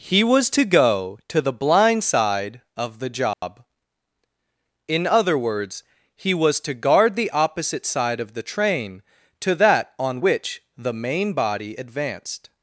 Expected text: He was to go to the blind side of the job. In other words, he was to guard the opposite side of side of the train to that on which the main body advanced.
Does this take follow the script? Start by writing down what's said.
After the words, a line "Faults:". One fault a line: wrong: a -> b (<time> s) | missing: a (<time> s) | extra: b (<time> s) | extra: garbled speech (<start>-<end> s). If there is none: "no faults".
He was to go to the blind side of the job. In other words, he was to guard the opposite side of the train to that on which the main body advanced.
Faults:
missing: side of (8.3 s)